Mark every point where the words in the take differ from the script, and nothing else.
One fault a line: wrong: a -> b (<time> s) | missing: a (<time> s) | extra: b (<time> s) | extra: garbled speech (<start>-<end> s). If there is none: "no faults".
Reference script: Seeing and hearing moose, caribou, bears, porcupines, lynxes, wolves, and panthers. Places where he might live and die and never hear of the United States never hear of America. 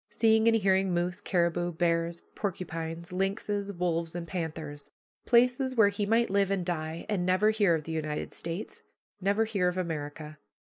no faults